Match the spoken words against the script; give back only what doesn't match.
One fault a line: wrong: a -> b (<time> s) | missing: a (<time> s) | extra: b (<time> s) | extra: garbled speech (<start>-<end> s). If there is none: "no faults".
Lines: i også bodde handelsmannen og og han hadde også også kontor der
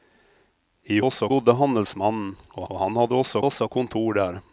no faults